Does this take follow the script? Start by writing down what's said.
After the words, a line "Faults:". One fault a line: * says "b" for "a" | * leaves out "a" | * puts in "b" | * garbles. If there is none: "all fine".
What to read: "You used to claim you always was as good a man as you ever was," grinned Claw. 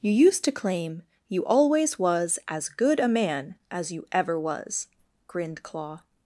"You used to claim you always was as good a man as you ever was," grinned Claw.
Faults:
all fine